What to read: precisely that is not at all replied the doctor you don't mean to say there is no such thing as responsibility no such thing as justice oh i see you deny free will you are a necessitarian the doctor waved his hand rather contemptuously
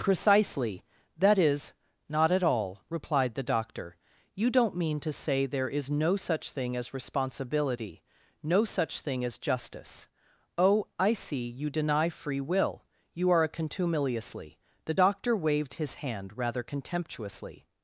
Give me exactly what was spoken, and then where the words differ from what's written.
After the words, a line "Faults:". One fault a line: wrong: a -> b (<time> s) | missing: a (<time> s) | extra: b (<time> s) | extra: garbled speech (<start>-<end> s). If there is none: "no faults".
precisely that is not at all replied the doctor you don't mean to say there is no such thing as responsibility no such thing as justice oh i see you deny free will you are a contumeliously the doctor waved his hand rather contemptuously
Faults:
wrong: necessitarian -> contumeliously (13.5 s)